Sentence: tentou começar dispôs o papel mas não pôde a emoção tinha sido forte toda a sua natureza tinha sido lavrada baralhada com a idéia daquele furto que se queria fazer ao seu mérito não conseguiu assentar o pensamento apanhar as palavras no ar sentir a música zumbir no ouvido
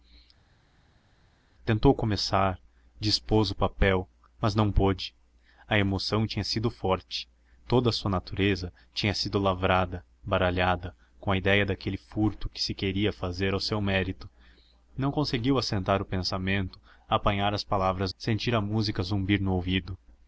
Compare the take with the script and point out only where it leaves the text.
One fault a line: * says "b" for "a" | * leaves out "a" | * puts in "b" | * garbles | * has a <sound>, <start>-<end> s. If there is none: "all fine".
* leaves out "no ar"